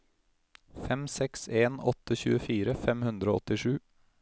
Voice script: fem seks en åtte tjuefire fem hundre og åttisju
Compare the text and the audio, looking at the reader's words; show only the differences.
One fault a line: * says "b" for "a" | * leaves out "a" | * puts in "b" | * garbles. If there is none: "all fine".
all fine